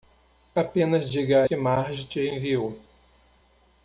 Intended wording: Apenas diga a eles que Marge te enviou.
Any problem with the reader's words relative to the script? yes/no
yes